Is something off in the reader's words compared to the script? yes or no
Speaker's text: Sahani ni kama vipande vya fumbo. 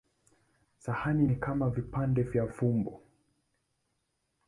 no